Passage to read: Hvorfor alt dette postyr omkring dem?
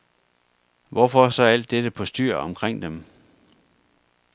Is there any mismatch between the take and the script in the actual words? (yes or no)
yes